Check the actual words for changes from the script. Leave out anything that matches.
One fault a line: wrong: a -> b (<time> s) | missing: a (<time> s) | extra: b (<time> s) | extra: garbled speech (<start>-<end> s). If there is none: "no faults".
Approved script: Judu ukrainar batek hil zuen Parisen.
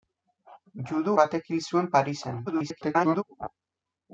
missing: ukrainar (1.1 s)
extra: garbled speech (2.5-3.2 s)